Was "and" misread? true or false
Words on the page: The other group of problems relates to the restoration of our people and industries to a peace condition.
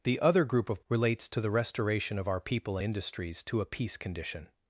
true